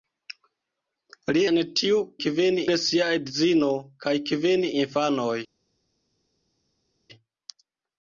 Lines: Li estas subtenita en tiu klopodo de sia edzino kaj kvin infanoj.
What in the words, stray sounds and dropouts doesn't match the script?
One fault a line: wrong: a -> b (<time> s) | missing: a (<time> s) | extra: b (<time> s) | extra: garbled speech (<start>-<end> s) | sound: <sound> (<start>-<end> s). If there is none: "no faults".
missing: estas subtenita (1.4 s)
wrong: klopodo -> kvin (2.3 s)